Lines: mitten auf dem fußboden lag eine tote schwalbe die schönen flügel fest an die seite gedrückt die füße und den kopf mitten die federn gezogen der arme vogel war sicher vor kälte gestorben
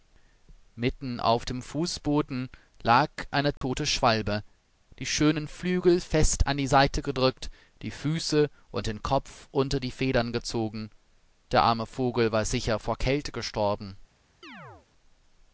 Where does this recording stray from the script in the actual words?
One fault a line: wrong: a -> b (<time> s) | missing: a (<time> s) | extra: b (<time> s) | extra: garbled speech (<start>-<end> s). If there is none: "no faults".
wrong: mitten -> unter (9.5 s)